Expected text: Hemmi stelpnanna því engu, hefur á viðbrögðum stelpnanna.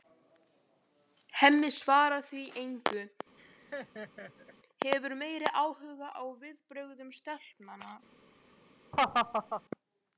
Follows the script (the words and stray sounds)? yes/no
no